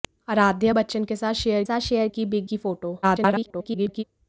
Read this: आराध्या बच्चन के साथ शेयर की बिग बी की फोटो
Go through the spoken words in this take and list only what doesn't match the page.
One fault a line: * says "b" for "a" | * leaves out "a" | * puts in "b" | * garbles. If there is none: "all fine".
* puts in "साथ शेयर"
* leaves out "बी"
* garbles